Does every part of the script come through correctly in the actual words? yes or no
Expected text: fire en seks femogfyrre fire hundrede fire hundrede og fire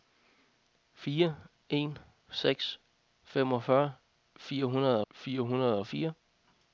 yes